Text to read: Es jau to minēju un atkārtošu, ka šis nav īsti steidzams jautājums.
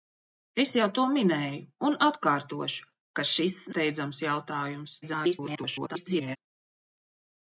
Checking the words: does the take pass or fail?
fail